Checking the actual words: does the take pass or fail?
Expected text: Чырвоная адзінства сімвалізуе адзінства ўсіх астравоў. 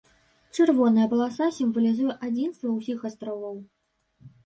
fail